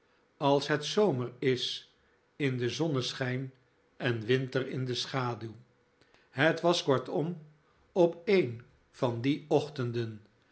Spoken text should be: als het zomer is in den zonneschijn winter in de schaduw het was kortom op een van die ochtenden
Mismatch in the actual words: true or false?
true